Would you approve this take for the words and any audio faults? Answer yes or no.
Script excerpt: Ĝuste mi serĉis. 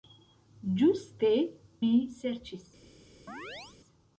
no